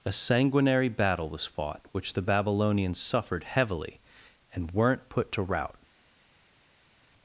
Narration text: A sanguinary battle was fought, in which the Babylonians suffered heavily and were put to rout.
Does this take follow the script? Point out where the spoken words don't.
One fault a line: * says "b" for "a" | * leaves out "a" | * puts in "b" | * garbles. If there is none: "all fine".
* leaves out "in"
* says "weren't" for "were"